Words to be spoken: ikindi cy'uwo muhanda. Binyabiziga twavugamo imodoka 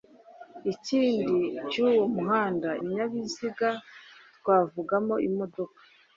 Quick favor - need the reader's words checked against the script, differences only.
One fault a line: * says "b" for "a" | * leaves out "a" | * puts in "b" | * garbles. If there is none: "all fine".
all fine